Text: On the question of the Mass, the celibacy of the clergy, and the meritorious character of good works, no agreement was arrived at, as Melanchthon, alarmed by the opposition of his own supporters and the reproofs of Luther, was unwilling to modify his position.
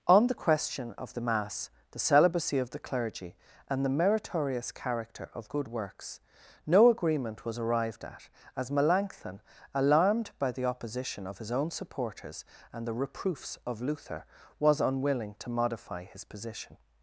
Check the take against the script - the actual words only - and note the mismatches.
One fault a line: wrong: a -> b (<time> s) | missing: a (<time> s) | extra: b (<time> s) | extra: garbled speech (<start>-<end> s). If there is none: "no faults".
no faults